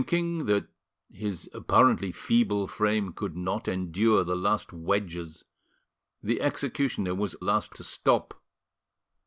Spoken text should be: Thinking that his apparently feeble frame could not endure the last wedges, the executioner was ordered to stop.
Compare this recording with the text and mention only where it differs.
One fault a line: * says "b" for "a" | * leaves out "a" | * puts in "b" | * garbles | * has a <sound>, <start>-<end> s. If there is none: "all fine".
* says "last" for "ordered"